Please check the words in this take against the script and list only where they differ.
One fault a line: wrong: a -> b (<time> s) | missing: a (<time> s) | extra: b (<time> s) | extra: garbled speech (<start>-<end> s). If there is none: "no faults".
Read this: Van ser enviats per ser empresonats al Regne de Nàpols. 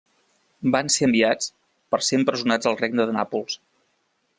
no faults